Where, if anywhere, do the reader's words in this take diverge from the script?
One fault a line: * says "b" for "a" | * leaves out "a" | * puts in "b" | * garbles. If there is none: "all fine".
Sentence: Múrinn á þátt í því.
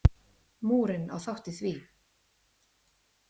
all fine